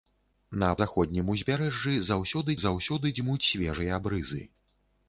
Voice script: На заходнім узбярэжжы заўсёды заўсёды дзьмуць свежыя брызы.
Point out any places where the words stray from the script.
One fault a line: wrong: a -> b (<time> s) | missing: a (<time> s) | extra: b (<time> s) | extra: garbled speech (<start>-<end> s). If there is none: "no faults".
no faults